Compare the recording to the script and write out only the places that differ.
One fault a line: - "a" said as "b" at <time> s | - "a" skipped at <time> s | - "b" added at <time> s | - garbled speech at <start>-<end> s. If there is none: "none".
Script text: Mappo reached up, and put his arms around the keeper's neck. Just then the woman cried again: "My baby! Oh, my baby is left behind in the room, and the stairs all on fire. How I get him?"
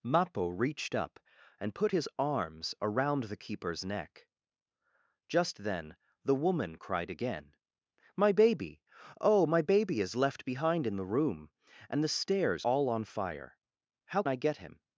none